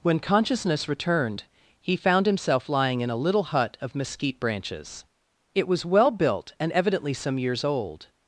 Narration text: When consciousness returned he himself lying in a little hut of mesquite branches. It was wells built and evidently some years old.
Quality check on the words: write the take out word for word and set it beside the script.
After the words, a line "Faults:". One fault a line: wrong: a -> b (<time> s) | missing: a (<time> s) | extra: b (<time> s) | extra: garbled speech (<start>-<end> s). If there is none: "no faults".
When consciousness returned he found himself lying in a little hut of mesquite branches. It was well built and evidently some years old.
Faults:
extra: found (1.9 s)
wrong: wells -> well (5.8 s)